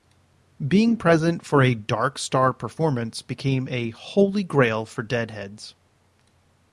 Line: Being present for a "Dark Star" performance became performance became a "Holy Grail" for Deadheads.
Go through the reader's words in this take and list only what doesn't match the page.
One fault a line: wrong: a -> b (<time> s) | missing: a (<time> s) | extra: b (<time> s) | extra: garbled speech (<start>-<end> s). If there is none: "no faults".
missing: performance became (3.7 s)